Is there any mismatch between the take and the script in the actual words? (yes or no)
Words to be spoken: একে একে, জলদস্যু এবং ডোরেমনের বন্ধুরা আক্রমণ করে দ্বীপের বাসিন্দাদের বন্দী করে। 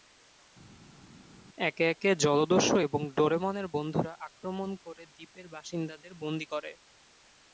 no